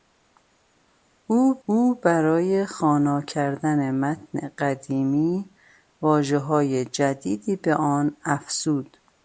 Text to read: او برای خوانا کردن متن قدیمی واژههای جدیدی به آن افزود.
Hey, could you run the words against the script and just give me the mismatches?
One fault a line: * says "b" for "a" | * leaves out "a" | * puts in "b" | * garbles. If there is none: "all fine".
* puts in "او"